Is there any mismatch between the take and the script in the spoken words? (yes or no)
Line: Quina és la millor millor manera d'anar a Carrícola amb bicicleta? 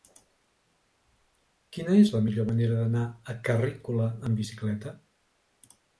yes